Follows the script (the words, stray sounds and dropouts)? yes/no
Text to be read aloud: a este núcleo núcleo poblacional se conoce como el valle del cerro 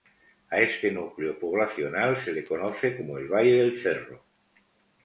no